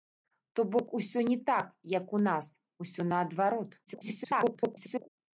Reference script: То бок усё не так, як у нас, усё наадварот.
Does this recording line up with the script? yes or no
no